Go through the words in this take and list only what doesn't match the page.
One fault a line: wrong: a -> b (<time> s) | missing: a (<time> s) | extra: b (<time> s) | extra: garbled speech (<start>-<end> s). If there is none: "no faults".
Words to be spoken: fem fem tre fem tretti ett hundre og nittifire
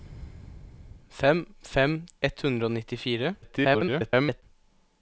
missing: tre fem tretti (1.9 s)
extra: garbled speech (3.4-4.4 s)